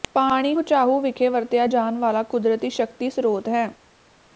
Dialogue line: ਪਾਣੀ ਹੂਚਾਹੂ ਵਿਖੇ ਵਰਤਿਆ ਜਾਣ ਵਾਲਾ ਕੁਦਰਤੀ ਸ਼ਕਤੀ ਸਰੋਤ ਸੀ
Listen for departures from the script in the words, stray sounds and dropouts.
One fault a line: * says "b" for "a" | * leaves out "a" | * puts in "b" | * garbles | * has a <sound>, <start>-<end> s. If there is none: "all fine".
* says "ਹੈ" for "ਸੀ"